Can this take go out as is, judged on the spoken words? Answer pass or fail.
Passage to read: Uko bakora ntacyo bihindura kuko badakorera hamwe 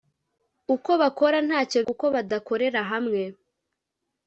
fail